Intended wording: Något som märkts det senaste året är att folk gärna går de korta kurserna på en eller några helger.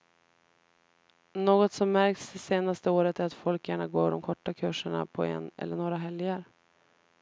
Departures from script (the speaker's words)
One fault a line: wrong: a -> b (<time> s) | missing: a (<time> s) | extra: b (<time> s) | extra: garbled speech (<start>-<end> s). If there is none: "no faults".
no faults